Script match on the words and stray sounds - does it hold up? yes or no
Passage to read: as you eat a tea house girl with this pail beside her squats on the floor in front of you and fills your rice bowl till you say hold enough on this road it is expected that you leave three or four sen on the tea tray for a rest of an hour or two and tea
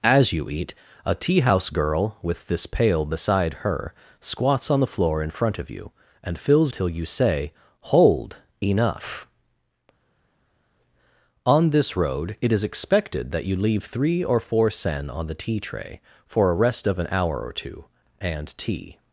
no